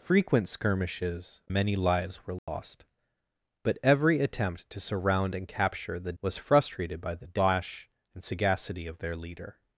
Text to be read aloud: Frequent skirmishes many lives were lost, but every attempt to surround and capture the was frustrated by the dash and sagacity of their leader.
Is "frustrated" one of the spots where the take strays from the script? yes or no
no